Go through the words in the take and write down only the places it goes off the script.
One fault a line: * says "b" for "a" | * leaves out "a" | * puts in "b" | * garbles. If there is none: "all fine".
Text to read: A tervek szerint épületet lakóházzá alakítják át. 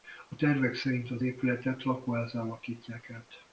* puts in "az"